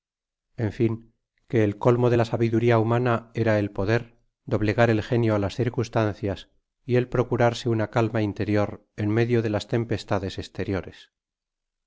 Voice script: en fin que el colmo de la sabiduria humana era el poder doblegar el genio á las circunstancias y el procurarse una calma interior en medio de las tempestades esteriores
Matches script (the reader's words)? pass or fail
pass